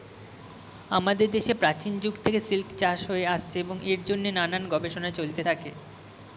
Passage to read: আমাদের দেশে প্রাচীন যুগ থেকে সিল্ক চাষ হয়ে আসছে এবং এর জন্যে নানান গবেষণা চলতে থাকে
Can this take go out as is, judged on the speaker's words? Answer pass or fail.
pass